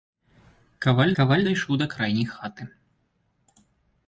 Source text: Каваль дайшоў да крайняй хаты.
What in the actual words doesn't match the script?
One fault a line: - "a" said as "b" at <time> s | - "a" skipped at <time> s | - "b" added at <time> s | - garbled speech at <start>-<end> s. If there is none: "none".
- "каваль" added at 1.2 s